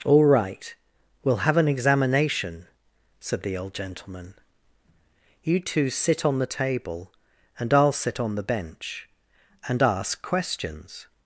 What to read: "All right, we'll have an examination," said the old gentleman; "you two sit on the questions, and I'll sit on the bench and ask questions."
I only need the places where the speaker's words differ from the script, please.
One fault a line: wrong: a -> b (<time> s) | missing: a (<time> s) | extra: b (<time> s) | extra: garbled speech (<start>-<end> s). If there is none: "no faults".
wrong: questions -> table (6.5 s)